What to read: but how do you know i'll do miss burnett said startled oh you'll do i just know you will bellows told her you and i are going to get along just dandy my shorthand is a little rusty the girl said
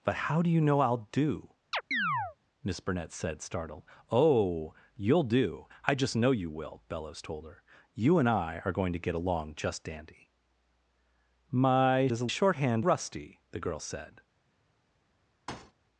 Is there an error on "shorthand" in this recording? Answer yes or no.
yes